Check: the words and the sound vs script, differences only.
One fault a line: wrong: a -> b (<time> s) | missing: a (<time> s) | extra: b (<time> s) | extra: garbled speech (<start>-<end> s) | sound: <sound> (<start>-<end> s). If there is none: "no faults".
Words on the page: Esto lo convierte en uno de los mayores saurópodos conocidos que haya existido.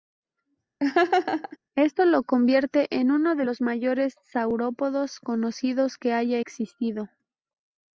sound: laugh (0.8-1.6 s)